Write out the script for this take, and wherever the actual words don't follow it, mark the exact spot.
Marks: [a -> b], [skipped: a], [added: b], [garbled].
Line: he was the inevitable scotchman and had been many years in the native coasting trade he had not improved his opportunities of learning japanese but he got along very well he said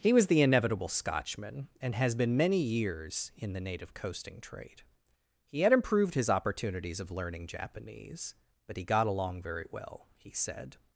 he was the inevitable scotchman and [had -> has] been many years in the native coasting trade he had [skipped: not] improved his opportunities of learning japanese but he got along very well he said